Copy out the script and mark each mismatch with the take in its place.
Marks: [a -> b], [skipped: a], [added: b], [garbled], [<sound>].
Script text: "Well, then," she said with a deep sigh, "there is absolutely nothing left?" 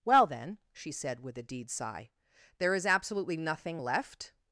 "Well, then," she said with a [deep -> deed] sigh, "there is absolutely nothing left?"